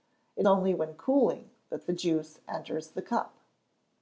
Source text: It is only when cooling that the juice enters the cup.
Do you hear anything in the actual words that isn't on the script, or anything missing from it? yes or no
yes